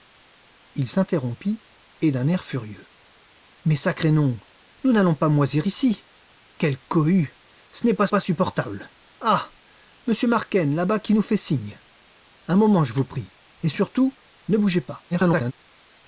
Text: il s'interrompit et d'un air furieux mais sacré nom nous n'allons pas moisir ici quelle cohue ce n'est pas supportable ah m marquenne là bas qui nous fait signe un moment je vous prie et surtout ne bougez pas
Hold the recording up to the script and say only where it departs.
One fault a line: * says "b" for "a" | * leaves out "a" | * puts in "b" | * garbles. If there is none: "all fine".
* puts in "pas"
* garbles